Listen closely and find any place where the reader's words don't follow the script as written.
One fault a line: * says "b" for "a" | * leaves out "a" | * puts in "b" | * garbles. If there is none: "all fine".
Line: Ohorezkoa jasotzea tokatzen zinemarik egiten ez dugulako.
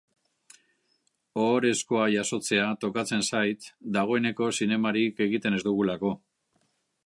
* puts in "zait dagoeneko"